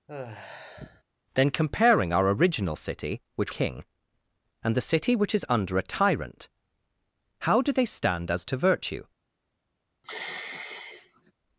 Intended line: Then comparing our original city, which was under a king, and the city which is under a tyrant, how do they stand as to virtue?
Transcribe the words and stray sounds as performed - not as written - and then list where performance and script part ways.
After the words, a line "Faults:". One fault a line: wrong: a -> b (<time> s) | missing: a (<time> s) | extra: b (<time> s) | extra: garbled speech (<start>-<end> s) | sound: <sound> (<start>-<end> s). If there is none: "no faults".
Then comparing our original city, which king, and the city which is under a tyrant, how do they stand as to virtue?
Faults:
sound: sigh (0.1-1.0 s)
missing: was under a (3.5 s)
sound: sigh (10.0-11.3 s)